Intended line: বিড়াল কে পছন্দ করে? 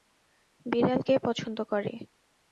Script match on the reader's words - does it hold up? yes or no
yes